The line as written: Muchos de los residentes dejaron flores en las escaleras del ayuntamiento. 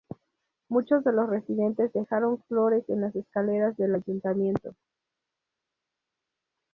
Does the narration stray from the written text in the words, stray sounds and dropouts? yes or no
no